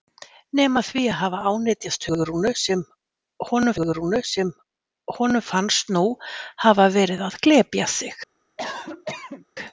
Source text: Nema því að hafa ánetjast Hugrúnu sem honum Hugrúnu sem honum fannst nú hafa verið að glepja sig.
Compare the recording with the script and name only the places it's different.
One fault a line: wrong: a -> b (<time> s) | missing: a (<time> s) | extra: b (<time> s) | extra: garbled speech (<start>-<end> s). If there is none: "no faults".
no faults